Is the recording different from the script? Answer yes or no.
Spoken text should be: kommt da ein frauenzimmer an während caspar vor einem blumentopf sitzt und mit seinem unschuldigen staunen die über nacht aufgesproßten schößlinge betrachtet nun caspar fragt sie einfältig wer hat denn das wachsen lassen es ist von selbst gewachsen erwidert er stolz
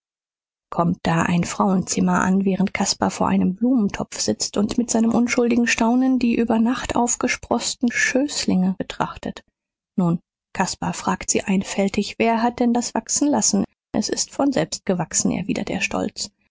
no